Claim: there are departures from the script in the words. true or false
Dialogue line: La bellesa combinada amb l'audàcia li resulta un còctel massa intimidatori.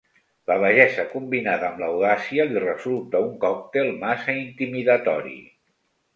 false